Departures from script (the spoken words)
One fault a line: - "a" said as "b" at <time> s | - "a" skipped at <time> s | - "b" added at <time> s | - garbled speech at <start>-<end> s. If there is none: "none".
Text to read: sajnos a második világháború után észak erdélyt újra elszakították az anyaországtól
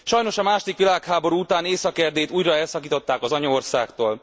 none